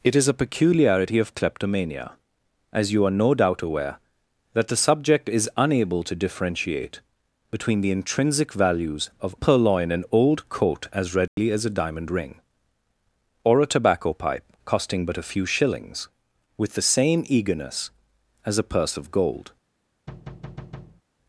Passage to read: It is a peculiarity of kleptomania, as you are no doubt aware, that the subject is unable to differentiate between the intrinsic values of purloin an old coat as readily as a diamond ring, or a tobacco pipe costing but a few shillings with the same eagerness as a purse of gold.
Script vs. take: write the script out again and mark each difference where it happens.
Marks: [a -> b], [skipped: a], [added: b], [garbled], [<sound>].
It is a peculiarity of kleptomania, as you are no doubt aware, that the subject is unable to differentiate between the intrinsic values of purloin an old coat as readily [dropout] as a diamond ring, or a tobacco pipe costing but a few shillings with the same eagerness as a purse of gold. [thud]